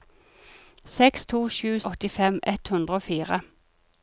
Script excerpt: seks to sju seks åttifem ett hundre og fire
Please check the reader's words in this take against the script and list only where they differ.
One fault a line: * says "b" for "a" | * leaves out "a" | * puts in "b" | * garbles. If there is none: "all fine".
* leaves out "seks"